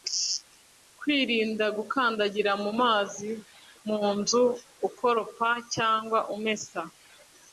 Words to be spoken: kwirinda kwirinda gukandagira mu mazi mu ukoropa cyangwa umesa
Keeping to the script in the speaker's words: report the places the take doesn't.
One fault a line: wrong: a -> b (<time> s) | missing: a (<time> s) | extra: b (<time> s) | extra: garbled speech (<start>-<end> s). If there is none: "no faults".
missing: kwirinda (1.6 s)
extra: nzu (4.2 s)